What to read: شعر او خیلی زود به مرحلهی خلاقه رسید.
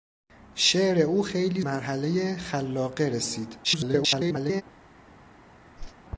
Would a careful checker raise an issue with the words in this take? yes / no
yes